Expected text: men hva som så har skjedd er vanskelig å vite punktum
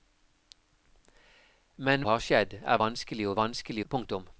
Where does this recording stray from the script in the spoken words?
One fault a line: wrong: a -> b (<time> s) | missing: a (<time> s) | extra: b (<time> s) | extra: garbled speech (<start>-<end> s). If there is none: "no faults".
missing: hva som så (2.0 s)
wrong: vite -> vanskelig (3.4 s)